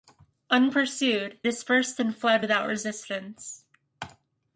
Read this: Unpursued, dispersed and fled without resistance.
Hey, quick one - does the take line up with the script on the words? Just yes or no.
yes